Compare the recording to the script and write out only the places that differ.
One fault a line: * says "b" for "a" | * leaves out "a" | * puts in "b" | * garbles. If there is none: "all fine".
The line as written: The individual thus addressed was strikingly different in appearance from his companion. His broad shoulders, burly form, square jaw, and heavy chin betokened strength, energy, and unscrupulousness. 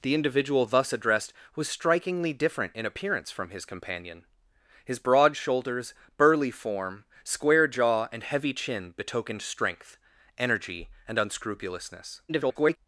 * garbles